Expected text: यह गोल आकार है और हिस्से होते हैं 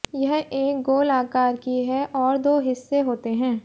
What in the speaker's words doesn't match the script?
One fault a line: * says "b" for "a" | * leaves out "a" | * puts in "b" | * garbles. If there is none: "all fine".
* puts in "एक"
* puts in "की"
* puts in "दो"